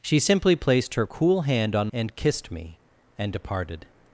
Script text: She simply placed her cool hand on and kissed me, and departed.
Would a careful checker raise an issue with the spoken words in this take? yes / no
no